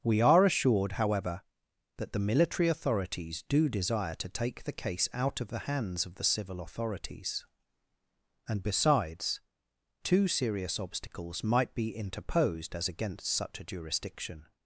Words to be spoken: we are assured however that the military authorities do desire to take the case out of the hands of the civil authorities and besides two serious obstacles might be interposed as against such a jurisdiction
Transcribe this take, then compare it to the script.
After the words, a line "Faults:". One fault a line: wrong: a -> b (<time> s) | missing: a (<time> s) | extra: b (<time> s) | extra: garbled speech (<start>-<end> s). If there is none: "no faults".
we are assured however that the military authorities do desire to take the case out of the hands of the civil authorities and besides two serious obstacles might be interposed as against such a jurisdiction
Faults:
no faults